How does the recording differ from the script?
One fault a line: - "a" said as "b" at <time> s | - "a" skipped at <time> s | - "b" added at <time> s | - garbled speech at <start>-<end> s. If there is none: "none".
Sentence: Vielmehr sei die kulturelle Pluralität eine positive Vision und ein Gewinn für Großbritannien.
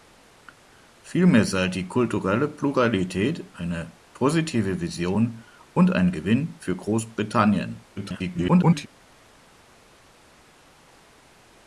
- garbled speech at 8.0-8.9 s